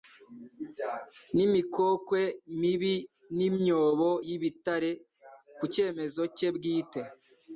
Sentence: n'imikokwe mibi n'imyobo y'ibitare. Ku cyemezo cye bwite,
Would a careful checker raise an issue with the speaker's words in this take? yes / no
no